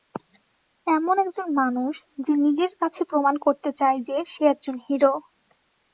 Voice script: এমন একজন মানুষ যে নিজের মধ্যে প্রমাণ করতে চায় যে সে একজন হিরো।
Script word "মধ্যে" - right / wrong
wrong